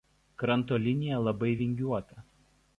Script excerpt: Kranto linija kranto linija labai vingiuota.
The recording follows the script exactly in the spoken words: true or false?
false